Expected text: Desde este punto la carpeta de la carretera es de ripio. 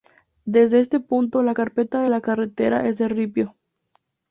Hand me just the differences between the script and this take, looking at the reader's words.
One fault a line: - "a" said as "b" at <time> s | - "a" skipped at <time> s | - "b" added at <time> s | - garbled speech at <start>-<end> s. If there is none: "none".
none